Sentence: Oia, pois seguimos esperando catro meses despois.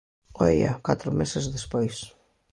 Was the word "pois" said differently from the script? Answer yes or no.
yes